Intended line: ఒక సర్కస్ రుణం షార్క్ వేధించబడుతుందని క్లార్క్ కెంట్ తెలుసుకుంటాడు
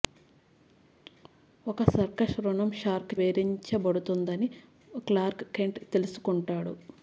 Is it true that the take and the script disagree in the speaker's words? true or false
false